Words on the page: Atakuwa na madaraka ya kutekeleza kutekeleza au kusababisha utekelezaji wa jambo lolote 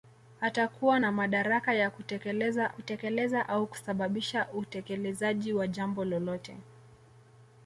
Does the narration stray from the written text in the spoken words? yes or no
no